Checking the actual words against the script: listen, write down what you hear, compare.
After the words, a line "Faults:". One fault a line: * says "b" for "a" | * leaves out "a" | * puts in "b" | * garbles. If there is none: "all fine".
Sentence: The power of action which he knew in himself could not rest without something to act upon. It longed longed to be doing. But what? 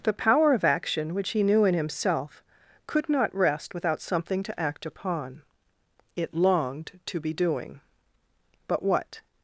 The power of action which he knew in himself could not rest without something to act upon. It longed to be doing. But what?
Faults:
* leaves out "longed"